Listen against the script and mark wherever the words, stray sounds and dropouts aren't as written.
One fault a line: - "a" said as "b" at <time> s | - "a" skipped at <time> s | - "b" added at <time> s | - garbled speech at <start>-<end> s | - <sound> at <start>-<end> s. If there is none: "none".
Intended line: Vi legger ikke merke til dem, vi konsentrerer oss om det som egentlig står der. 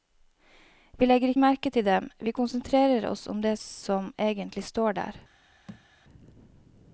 - "ikke" skipped at 1.3 s
- thud at 5.7-5.9 s